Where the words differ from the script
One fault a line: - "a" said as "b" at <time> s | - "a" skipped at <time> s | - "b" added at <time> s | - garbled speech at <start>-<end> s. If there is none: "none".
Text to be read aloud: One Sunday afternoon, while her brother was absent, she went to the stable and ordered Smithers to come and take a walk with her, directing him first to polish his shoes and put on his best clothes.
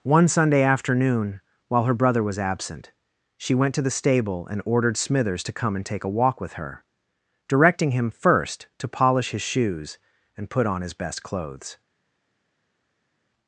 none